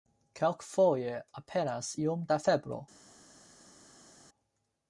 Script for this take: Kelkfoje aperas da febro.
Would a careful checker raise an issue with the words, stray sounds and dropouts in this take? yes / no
yes